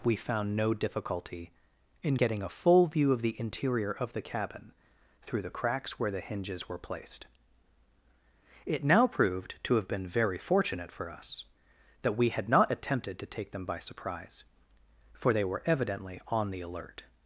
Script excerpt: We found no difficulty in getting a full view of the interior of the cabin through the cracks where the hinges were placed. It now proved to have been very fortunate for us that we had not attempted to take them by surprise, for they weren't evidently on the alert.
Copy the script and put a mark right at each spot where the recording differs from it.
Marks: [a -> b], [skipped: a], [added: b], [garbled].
We found no difficulty in getting a full view of the interior of the cabin through the cracks where the hinges were placed. It now proved to have been very fortunate for us that we had not attempted to take them by surprise, for they [weren't -> were] evidently on the alert.